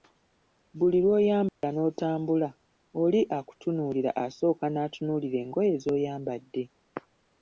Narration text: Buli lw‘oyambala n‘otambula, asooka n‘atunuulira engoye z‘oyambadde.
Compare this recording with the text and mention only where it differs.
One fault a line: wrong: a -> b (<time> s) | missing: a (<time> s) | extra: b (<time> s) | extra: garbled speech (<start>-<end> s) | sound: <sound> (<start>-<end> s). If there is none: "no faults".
sound: dropout (1.5-1.6 s)
extra: oli akutunuulira (3.0 s)